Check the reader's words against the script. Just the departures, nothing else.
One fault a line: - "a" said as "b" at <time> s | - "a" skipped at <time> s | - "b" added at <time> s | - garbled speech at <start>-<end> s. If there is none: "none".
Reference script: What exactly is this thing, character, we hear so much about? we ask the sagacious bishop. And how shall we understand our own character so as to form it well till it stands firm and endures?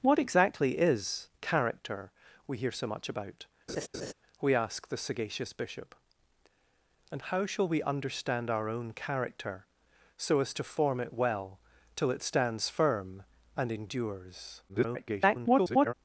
- "this thing" skipped at 1.3 s
- garbled speech at 14.7-15.9 s